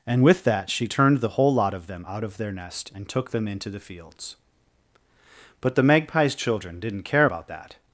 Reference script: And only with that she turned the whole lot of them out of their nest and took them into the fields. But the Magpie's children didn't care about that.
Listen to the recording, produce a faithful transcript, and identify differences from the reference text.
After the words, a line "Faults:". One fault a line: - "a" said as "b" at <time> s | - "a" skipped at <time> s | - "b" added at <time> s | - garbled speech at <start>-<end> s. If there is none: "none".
And with that she turned the whole lot of them out of their nest and took them into the fields. But the Magpie's children didn't care about that.
Faults:
- "only" skipped at 0.2 s